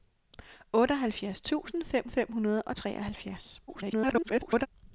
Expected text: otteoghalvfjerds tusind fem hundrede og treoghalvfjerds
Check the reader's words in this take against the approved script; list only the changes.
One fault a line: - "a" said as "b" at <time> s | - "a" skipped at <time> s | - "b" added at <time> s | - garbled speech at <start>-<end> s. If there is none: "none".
- "fem" added at 2.1 s
- garbled speech at 3.7-4.7 s